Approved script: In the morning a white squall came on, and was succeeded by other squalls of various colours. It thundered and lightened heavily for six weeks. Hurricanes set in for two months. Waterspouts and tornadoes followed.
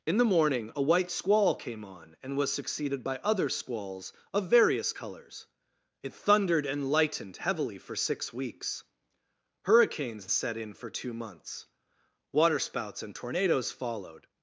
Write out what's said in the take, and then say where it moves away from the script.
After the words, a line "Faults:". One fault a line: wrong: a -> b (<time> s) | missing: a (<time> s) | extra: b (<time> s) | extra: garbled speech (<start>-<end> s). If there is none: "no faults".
In the morning a white squall came on, and was succeeded by other squalls of various colours. It thundered and lightened heavily for six weeks. Hurricanes set in for two months. Waterspouts and tornadoes followed.
Faults:
no faults